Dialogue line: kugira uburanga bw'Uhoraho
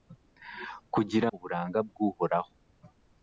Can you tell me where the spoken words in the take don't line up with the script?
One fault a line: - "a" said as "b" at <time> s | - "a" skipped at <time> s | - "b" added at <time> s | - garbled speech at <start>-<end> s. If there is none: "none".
none